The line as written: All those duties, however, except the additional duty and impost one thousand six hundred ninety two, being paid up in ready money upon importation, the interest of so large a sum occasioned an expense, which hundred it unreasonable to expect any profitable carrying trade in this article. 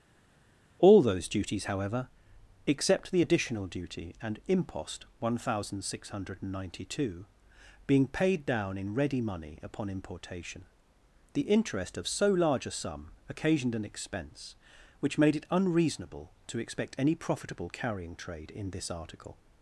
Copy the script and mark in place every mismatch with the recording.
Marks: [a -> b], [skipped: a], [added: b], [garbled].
All those duties, however, except the additional duty and impost one thousand six hundred ninety two, being paid [up -> down] in ready money upon importation, the interest of so large a sum occasioned an expense, which [hundred -> made] it unreasonable to expect any profitable carrying trade in this article.